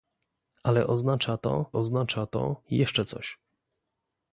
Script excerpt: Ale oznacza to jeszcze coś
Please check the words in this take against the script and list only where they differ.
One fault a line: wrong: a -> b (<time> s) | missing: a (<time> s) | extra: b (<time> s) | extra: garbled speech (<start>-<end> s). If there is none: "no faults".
extra: oznacza to (1.7 s)